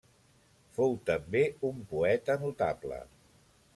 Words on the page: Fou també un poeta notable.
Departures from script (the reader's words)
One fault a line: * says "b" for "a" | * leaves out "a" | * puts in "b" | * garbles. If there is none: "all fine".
all fine